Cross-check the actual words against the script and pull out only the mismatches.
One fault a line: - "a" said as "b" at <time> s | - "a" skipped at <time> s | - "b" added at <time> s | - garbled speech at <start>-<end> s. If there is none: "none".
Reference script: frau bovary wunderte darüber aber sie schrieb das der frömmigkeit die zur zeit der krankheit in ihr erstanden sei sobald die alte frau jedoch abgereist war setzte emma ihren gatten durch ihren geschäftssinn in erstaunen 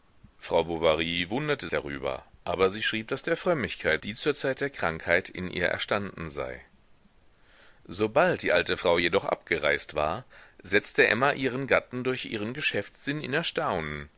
none